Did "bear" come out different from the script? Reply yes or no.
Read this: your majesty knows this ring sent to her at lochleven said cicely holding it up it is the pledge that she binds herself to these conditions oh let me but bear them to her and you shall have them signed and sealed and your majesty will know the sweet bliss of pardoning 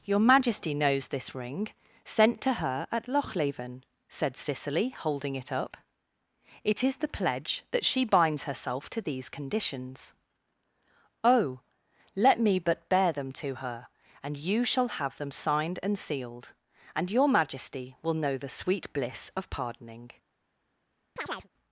no